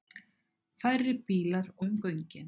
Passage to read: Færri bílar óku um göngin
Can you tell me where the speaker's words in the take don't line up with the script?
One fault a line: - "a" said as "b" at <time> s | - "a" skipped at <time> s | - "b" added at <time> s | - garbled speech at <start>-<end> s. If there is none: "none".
- "óku" skipped at 1.7 s